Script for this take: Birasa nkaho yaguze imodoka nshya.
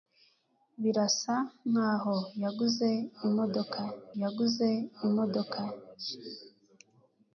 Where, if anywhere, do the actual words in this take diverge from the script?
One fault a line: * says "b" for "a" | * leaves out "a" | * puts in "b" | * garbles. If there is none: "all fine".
* puts in "yaguze imodoka"